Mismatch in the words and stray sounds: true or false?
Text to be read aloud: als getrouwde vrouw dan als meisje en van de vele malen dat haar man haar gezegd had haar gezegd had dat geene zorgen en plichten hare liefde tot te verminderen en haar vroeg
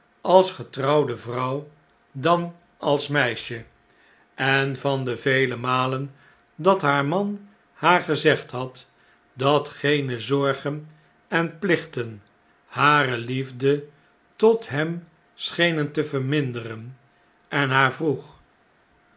true